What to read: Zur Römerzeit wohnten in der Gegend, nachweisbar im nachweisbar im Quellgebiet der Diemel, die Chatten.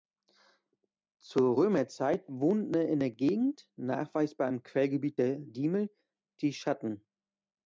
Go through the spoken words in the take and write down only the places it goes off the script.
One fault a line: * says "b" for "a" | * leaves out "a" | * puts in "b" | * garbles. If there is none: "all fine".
* leaves out "nachweisbar im"